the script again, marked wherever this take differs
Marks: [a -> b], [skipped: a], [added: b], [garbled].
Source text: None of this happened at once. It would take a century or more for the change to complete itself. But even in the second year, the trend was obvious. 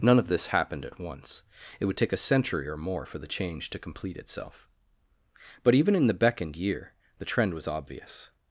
None of this happened at once. It would take a century or more for the change to complete itself. But even in the [second -> beckoned] year, the trend was obvious.